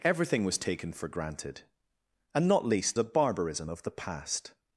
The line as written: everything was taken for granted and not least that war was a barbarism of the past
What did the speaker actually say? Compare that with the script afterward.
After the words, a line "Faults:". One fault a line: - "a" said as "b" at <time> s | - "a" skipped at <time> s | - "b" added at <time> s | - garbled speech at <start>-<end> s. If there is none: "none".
everything was taken for granted and not least a barbarism of the past
Faults:
- "that war was" skipped at 3.0 s